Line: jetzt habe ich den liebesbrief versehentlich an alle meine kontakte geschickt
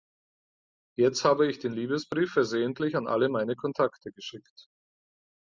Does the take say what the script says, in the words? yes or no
yes